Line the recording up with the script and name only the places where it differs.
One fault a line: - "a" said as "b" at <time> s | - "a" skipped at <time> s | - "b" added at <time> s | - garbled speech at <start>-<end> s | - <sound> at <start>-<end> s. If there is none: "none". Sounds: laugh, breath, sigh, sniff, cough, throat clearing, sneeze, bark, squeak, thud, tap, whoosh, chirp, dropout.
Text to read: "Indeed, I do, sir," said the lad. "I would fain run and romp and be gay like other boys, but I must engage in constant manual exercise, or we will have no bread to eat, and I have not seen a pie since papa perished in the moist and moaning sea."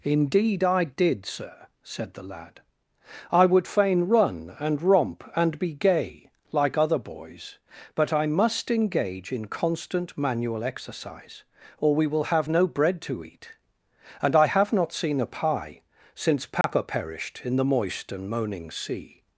- "do" said as "did" at 0.8 s
- dropout at 16.6-16.6 s